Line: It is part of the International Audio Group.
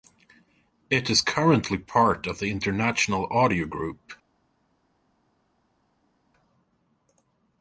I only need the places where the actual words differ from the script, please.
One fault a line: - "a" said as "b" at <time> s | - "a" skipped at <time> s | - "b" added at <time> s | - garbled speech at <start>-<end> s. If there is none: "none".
- "currently" added at 1.2 s